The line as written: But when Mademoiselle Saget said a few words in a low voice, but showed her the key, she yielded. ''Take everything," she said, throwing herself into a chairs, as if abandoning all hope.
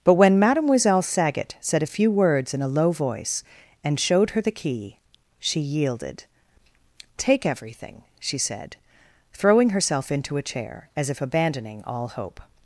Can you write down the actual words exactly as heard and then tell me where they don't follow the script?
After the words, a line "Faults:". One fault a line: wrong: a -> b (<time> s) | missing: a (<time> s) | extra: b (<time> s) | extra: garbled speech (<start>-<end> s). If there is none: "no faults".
But when Mademoiselle Saget said a few words in a low voice, and showed her the key, she yielded. ''Take everything," she said, throwing herself into a chair, as if abandoning all hope.
Faults:
wrong: but -> and (3.8 s)
wrong: chairs -> chair (10.4 s)